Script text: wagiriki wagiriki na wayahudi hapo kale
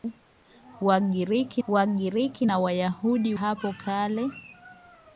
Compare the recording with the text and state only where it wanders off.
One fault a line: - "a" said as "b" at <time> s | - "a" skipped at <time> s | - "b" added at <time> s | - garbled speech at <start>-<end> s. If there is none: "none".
none